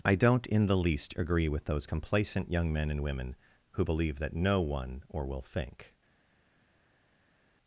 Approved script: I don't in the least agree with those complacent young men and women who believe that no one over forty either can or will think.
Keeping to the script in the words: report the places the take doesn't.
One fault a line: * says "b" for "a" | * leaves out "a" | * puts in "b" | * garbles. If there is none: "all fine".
* leaves out "over forty either can"